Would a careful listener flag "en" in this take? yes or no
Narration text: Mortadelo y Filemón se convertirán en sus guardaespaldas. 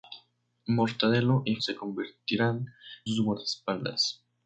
yes